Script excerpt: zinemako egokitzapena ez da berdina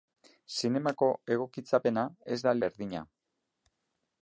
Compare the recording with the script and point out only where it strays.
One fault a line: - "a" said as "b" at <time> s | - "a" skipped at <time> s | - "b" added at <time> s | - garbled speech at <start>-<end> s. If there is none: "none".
none